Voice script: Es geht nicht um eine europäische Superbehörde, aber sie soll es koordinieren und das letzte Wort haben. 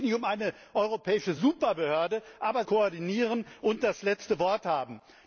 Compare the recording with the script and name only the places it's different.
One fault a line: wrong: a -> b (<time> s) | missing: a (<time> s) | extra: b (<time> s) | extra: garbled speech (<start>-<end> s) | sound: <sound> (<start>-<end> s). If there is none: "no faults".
missing: sie soll es (2.6 s)